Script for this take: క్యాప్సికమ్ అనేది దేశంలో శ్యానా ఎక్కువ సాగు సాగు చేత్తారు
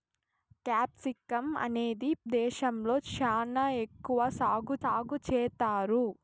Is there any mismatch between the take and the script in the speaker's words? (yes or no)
no